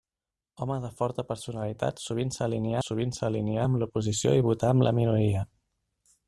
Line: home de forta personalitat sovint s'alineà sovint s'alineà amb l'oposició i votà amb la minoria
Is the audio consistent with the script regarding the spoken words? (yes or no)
yes